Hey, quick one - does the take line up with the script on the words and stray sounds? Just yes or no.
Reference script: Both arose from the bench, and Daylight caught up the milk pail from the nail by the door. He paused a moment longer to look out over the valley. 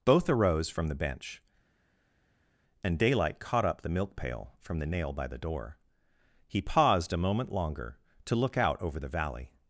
yes